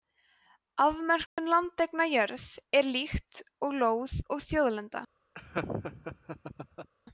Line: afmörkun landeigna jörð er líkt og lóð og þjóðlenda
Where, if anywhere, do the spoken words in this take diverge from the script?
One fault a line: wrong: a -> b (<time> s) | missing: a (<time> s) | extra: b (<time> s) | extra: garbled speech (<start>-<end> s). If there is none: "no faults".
no faults